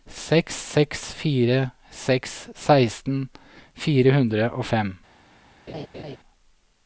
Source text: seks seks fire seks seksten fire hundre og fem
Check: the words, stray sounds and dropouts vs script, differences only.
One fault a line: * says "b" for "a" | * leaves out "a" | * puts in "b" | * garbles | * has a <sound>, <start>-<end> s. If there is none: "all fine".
* has a laugh, 5.7-6.2 s